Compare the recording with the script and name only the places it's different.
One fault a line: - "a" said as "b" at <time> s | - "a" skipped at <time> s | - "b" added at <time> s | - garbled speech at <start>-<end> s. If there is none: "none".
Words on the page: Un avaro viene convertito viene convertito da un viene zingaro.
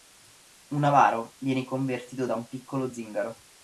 - "viene convertito" skipped at 2.2 s
- "viene" said as "piccolo" at 2.5 s